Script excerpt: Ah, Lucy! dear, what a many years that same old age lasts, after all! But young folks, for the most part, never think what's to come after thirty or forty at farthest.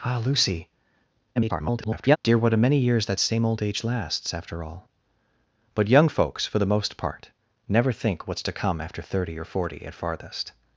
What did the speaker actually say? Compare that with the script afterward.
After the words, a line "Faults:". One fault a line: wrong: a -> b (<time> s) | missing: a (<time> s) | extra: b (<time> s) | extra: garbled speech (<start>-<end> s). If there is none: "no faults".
Ah, Lucy! [garbled] dear, what a many years that same old age lasts, after all! But young folks, for the most part, never think what's to come after thirty or forty at farthest.
Faults:
extra: garbled speech (1.4-2.2 s)